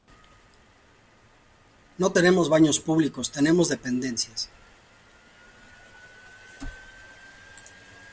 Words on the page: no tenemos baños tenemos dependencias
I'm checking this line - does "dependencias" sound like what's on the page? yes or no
yes